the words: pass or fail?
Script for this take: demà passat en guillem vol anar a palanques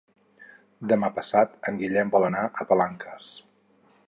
pass